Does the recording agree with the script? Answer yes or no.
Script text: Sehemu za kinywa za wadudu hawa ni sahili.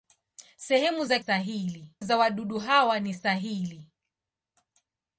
no